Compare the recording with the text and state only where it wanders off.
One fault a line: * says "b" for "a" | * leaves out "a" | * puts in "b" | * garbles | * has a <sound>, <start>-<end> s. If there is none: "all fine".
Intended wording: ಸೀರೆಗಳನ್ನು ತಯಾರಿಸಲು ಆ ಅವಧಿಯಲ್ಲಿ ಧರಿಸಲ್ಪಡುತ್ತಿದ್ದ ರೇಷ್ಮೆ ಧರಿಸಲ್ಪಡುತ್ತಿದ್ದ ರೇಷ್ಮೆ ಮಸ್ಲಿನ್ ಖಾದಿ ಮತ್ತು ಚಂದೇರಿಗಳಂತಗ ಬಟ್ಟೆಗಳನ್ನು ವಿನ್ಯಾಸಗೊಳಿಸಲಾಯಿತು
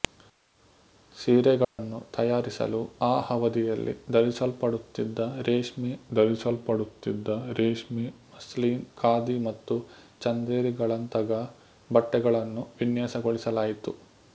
* has a dropout, 1.6-1.8 s